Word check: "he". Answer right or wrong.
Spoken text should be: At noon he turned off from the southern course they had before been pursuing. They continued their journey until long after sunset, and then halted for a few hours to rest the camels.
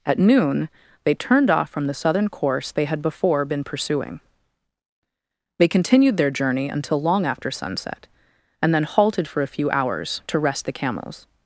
wrong